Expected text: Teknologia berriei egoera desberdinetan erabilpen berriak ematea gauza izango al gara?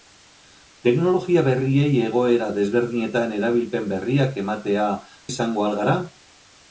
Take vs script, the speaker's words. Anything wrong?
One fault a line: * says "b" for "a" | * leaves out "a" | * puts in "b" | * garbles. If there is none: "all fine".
* leaves out "gauza"